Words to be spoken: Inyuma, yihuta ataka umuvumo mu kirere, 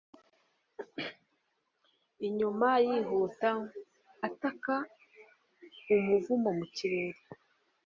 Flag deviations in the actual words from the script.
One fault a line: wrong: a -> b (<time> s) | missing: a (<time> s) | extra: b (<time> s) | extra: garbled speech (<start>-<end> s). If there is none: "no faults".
no faults